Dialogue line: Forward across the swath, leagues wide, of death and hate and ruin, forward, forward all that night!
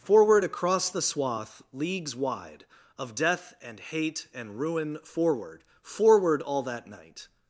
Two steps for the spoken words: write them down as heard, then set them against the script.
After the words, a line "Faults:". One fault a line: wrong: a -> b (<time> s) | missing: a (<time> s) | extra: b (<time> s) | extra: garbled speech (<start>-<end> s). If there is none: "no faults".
Forward across the swath, leagues wide, of death and hate and ruin, forward, forward all that night!
Faults:
no faults